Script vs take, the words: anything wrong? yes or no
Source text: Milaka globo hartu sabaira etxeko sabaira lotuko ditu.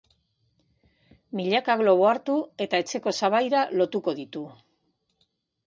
yes